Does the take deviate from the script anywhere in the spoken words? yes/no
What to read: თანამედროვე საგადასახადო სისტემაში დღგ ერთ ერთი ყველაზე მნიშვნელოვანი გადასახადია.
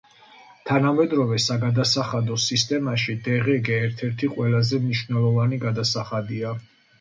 no